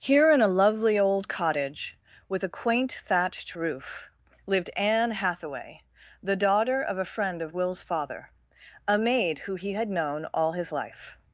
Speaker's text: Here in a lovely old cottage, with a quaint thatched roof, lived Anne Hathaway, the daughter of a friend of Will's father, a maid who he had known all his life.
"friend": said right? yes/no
yes